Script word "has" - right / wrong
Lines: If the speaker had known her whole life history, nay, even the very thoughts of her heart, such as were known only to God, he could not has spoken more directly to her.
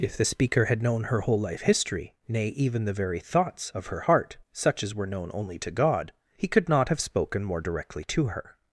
wrong